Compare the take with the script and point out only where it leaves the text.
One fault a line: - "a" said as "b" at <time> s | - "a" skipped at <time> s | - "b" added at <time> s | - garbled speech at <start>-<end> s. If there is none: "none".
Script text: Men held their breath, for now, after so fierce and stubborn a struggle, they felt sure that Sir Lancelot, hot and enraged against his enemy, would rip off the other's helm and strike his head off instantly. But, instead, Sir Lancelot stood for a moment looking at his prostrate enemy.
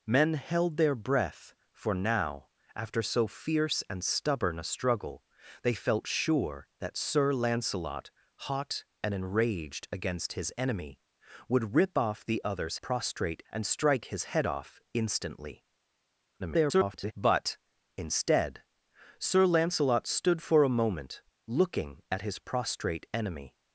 - "helm" said as "prostrate" at 12.8 s
- garbled speech at 16.4-17.1 s